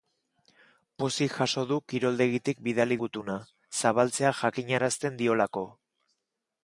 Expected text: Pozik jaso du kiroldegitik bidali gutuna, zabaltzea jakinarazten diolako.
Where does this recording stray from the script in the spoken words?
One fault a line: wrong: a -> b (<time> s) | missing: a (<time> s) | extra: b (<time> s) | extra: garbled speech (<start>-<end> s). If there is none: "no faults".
no faults